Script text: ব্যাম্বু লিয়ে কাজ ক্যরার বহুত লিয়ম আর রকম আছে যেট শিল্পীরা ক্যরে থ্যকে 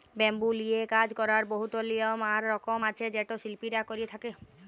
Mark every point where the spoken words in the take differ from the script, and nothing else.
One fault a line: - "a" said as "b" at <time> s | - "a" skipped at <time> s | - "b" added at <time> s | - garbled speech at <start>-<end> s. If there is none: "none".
none